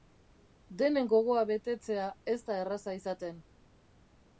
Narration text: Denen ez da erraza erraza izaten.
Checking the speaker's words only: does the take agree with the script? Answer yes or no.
no